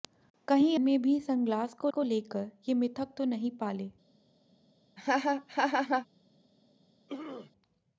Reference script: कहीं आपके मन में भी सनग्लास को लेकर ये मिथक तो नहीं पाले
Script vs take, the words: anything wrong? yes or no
yes